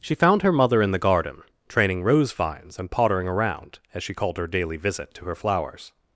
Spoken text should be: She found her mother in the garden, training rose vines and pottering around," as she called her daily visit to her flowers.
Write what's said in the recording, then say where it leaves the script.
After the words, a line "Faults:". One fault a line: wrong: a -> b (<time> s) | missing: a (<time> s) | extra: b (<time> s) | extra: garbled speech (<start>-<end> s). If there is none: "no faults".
She found her mother in the garden, training rose vines and pottering around," as she called her daily visit to her flowers.
Faults:
no faults